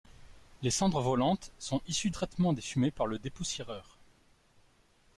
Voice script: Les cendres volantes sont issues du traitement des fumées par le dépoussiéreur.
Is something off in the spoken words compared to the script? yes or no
yes